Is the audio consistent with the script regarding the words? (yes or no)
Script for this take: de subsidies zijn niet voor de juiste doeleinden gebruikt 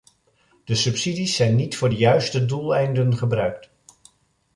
yes